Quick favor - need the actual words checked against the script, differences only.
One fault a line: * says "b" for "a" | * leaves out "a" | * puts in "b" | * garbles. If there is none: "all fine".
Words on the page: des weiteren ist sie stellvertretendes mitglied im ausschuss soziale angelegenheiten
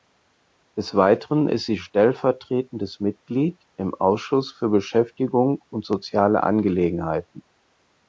* puts in "für beschäftigung und"